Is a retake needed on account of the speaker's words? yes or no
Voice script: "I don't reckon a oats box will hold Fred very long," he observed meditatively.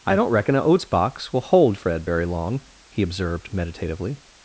no